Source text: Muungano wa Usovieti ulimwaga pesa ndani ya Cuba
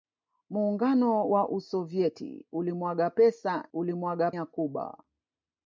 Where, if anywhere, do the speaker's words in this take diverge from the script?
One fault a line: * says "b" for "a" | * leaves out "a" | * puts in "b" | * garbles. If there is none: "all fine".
* says "ulimwaga" for "ndani"